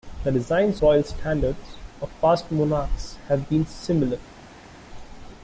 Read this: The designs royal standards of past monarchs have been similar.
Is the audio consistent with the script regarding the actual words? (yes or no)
yes